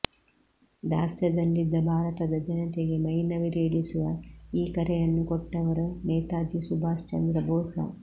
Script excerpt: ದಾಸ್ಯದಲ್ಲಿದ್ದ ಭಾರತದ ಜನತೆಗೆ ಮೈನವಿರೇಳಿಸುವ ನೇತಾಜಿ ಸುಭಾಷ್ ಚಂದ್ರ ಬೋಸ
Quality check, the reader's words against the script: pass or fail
fail